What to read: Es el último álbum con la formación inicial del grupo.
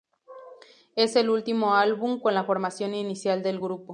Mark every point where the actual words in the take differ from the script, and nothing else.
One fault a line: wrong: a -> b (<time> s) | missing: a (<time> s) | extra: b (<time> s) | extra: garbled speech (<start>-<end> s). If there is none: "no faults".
no faults